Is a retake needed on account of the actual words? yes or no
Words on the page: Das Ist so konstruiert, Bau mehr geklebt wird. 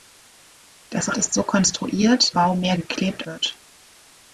no